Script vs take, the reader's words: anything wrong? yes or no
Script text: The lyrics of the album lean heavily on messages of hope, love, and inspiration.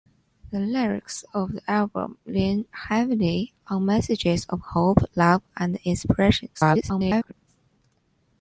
yes